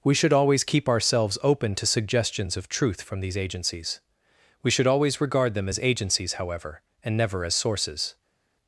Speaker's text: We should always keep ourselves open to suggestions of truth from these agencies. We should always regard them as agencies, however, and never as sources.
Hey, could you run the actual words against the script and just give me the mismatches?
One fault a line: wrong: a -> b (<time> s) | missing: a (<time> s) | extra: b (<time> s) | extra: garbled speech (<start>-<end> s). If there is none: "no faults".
no faults